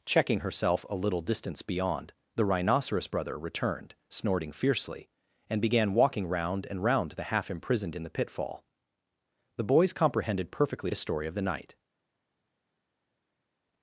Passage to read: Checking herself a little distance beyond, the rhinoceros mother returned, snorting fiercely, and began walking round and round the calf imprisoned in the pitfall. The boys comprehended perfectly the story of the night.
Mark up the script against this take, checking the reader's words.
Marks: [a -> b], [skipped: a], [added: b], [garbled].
Checking herself a little distance beyond, the rhinoceros [mother -> brother] returned, snorting fiercely, and began walking round and round the [calf -> half] imprisoned in the pitfall. The boys comprehended perfectly the story of the night.